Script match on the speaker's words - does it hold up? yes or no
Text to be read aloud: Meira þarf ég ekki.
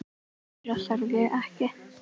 yes